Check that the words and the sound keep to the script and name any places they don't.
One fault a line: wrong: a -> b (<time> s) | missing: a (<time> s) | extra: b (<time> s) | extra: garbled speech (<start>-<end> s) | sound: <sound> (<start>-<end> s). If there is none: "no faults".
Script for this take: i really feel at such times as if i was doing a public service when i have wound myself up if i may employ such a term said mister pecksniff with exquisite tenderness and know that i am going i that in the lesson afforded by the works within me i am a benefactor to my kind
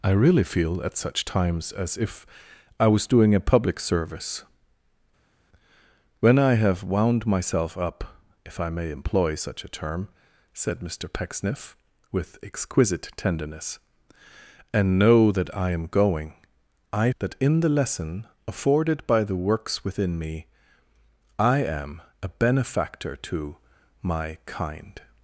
no faults